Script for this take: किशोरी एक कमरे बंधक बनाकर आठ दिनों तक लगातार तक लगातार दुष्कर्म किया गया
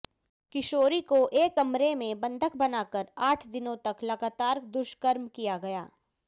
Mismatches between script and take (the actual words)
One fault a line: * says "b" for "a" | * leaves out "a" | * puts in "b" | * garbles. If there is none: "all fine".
* puts in "को"
* puts in "में"
* leaves out "तक लगातार"